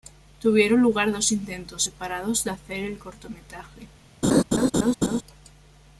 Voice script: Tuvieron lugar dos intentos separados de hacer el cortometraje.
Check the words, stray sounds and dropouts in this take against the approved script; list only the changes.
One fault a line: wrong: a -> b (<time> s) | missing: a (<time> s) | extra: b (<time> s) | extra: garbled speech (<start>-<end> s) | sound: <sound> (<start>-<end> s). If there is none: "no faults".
sound: laugh (4.2-5.2 s)